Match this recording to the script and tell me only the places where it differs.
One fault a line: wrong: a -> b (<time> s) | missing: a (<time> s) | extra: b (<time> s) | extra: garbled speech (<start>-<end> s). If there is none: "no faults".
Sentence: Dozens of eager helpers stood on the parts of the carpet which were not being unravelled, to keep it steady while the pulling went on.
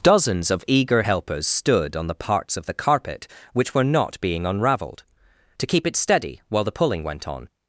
no faults